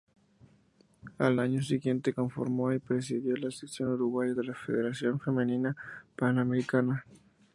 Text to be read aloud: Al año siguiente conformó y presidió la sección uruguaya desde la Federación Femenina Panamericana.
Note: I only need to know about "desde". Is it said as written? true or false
false